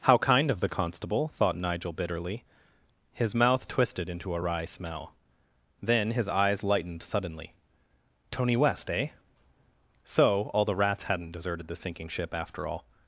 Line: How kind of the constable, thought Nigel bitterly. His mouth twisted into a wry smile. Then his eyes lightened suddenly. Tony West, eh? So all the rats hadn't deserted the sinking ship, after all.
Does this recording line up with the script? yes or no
no